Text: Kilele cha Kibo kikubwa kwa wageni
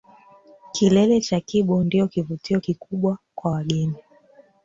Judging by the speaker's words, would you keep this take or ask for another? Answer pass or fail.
fail